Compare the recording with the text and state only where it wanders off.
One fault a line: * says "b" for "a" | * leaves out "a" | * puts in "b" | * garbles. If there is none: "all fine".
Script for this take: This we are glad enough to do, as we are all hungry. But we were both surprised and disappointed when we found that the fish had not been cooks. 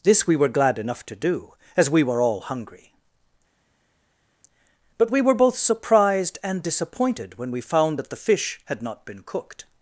* says "were" for "are"
* says "were" for "are"
* says "cooked" for "cooks"